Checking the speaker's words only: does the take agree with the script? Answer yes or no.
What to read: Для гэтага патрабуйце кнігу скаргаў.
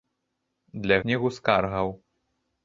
no